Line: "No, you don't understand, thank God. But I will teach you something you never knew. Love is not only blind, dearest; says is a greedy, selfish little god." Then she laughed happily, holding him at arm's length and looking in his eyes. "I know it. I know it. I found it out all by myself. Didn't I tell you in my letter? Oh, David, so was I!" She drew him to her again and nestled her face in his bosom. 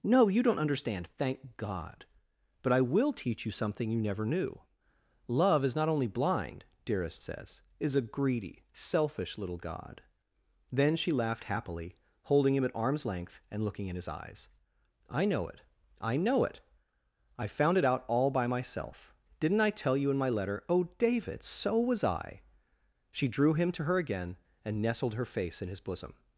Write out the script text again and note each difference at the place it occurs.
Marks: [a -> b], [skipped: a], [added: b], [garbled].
"No, you don't understand, thank God. But I will teach you something you never knew. Love is not only blind, dearest; says is a greedy, selfish little god." Then she laughed happily, holding him at arm's length and looking in his eyes. "I know it. I know it. I found it out all by myself. Didn't I tell you in my letter? Oh, David, so was I!" She drew him to her again and nestled her face in his bosom.